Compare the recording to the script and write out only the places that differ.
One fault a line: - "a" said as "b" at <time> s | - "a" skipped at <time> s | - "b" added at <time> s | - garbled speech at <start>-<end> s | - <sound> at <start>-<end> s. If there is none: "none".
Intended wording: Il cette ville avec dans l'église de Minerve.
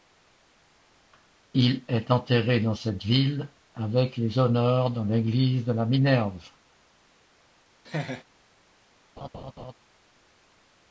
- "est enterré dans" added at 1.9 s
- "les honneurs" added at 4.2 s
- "la" added at 5.7 s
- laugh at 7.8-8.2 s
- laugh at 9.2-9.7 s